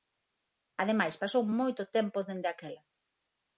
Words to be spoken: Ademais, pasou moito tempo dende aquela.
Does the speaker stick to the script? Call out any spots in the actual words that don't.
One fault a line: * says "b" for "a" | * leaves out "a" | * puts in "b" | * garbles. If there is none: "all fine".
all fine